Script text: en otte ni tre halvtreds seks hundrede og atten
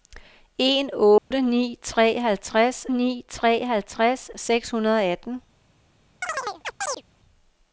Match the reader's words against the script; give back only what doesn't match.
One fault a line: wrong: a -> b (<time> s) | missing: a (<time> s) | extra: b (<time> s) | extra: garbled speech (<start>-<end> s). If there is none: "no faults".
extra: ni tre halvtreds (2.9 s)